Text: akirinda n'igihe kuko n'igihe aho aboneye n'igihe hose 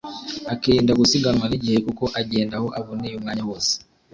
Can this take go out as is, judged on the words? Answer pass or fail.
fail